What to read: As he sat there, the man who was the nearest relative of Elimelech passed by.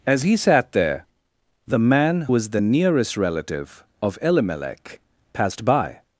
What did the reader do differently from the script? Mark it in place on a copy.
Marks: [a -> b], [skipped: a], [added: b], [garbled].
As he sat there, the man [skipped: who] was the nearest relative of Elimelech passed by.